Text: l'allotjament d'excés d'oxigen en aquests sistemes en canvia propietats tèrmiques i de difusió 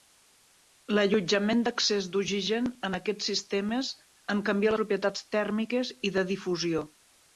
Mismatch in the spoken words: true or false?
false